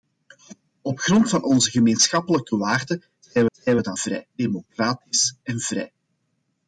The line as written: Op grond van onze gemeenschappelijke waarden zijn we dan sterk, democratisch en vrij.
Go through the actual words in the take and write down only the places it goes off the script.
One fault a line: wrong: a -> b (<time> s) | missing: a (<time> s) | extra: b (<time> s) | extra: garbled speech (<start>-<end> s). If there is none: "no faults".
extra: zijn (3.5 s)
wrong: sterk -> vrij (3.9 s)